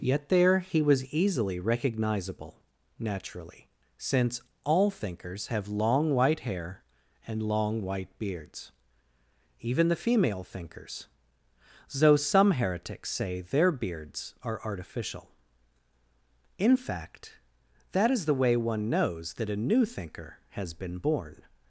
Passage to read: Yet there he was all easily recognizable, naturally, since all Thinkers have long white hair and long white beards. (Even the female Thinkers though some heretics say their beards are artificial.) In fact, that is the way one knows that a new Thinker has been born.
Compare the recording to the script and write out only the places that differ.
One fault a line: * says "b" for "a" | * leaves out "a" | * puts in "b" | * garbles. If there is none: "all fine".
* leaves out "all"